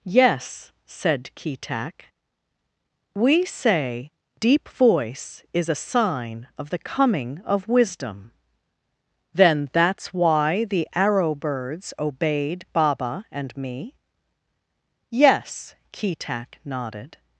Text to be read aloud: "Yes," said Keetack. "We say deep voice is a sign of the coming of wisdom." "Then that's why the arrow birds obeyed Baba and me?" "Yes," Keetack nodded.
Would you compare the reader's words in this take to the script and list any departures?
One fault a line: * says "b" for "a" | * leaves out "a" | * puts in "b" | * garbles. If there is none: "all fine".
all fine